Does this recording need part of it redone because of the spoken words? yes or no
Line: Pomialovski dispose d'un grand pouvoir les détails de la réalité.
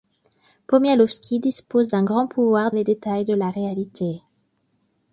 no